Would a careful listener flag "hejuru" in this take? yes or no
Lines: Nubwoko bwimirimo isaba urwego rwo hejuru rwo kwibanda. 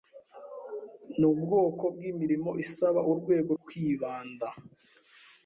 yes